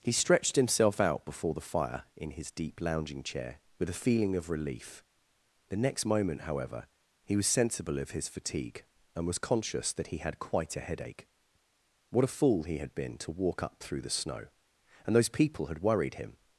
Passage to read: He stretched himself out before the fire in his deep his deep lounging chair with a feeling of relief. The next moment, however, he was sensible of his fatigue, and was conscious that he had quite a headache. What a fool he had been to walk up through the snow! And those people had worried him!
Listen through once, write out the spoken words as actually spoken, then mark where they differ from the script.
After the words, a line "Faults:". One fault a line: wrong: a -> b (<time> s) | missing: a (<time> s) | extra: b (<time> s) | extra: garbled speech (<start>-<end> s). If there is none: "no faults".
He stretched himself out before the fire in his deep lounging chair with a feeling of relief. The next moment, however, he was sensible of his fatigue, and was conscious that he had quite a headache. What a fool he had been to walk up through the snow! And those people had worried him!
Faults:
missing: his deep (2.8 s)